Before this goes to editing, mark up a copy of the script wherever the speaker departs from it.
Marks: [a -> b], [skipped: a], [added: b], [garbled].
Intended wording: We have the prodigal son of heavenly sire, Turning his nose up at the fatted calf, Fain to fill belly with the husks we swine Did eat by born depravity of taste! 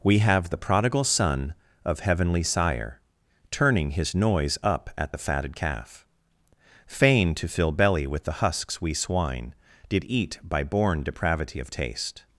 We have the prodigal son of heavenly sire, Turning his [nose -> noise] up at the fatted calf, Fain to fill belly with the husks we swine Did eat by born depravity of taste!